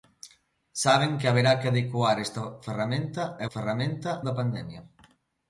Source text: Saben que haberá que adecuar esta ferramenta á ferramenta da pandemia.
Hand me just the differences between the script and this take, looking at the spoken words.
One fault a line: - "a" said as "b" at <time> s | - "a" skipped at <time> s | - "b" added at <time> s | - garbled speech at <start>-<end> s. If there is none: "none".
none